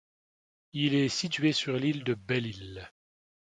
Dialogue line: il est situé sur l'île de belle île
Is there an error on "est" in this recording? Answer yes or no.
no